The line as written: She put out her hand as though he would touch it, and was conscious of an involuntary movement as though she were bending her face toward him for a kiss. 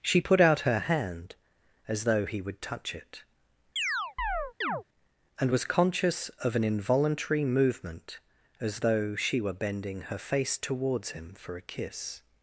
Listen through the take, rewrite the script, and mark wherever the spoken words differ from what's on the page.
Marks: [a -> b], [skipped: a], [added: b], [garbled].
She put out her hand as though he would touch it, and was conscious of an involuntary movement as though she were bending her face [toward -> towards] him for a kiss.